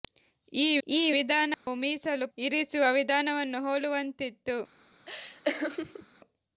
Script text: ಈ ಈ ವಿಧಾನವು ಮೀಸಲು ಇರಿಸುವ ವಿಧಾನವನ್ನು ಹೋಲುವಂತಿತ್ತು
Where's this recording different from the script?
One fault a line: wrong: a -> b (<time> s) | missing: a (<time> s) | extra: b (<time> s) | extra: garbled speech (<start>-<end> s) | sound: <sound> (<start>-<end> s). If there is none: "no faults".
sound: dropout (1.5-1.7 s)
sound: laugh (5.1-6.1 s)